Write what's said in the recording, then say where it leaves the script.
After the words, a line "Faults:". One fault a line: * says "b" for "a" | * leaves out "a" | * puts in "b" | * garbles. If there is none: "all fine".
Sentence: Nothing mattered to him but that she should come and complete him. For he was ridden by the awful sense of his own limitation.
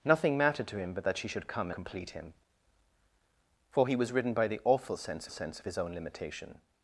Nothing mattered to him but that she should come complete him. For he was ridden by the awful sense sense of his own limitation.
Faults:
* leaves out "and"
* puts in "sense"